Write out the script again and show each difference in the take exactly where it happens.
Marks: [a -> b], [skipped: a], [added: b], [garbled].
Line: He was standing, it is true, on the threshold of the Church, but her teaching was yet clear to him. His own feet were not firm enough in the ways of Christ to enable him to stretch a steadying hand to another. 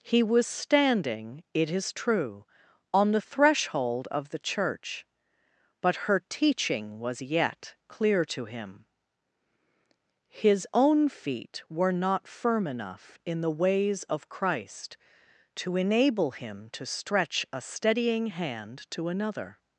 He was standing, it is true, on the threshold of the Church, but her teaching was yet clear to him. His own feet were not firm enough in the ways of Christ to enable him to stretch a steadying hand to another.